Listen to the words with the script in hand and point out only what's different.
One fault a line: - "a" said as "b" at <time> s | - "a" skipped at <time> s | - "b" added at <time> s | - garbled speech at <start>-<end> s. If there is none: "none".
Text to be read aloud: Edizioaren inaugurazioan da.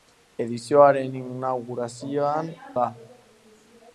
none